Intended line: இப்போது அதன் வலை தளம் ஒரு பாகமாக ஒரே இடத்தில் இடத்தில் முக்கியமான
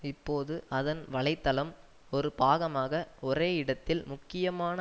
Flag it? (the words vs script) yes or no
yes